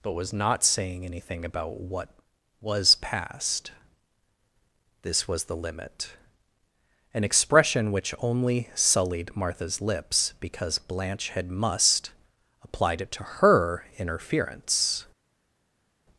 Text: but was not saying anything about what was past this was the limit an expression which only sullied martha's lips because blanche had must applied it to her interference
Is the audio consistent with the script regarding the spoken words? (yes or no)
yes